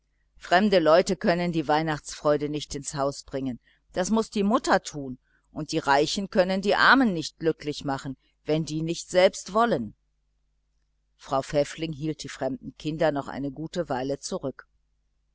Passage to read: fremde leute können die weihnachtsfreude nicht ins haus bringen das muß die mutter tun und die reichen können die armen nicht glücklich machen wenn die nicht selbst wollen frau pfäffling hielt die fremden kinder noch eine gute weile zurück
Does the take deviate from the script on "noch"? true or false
false